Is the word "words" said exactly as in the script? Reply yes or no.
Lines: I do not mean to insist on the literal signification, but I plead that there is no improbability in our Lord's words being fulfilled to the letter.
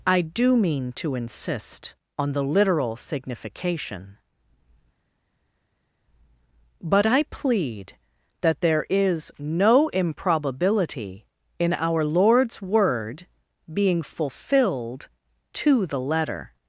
no